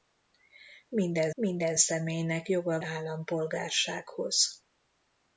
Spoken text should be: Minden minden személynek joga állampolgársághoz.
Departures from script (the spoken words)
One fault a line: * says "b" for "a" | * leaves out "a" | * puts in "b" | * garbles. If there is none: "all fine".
all fine